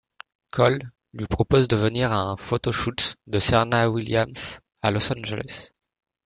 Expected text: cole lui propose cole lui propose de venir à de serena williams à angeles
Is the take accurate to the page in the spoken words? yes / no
no